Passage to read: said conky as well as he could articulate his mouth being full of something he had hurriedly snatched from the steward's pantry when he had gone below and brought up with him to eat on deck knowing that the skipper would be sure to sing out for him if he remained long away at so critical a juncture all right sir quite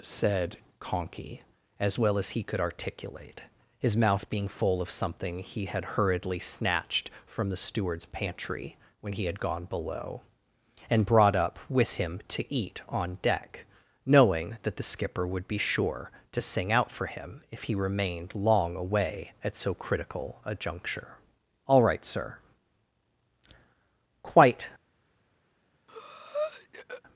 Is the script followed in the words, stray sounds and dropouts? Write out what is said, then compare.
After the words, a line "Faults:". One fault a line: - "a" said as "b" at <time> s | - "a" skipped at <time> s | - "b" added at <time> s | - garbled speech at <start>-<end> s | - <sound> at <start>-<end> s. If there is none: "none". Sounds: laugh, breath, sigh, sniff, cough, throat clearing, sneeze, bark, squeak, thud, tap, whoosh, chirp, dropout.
said conky as well as he could articulate his mouth being full of something he had hurriedly snatched from the steward's pantry when he had gone below and brought up with him to eat on deck knowing that the skipper would be sure to sing out for him if he remained long away at so critical a juncture all right sir quite
Faults:
- breath at 25.9-27.0 s